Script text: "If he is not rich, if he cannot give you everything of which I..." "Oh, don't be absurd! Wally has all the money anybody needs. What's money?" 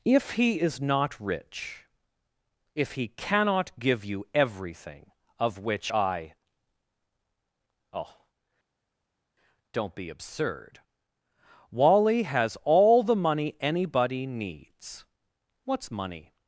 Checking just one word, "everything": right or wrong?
right